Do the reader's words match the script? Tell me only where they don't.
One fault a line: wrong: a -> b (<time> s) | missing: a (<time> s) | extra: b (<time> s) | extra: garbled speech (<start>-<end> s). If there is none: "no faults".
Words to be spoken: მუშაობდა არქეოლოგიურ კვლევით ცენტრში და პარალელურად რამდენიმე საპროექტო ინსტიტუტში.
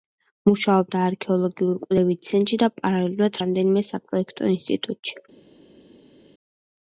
no faults